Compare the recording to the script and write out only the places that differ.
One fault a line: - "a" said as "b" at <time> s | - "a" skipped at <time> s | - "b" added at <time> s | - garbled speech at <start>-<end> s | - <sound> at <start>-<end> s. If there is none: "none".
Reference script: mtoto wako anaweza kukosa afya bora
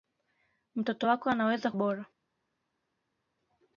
- "kukosa afya" skipped at 1.7 s